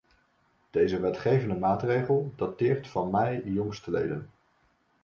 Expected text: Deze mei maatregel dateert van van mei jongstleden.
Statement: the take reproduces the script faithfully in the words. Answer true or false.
false